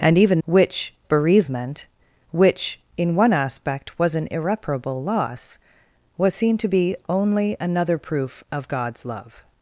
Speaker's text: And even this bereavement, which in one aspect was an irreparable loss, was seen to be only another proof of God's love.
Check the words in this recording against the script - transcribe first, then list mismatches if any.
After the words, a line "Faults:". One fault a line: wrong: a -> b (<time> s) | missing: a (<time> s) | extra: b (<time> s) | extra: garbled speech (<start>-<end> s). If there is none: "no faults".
And even which bereavement, which in one aspect was an irreparable loss, was seen to be only another proof of God's love.
Faults:
wrong: this -> which (0.5 s)